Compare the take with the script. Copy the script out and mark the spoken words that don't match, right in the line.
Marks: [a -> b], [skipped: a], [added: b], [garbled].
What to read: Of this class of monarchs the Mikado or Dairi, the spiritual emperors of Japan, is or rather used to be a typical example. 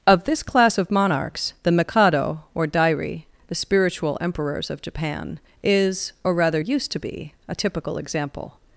Of this class of monarchs the Mikado or Dairi, the spiritual emperors of Japan, is or rather used to be a typical example.